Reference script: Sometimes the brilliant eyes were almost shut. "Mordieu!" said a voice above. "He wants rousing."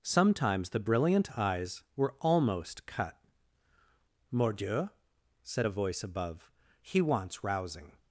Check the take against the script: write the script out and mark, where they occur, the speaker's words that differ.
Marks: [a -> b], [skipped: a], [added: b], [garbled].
Sometimes the brilliant eyes were almost [shut. -> cut] "Mordieu!" said a voice above. "He wants rousing."